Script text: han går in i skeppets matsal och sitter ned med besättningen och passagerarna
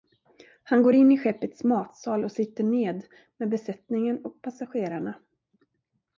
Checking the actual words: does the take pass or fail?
pass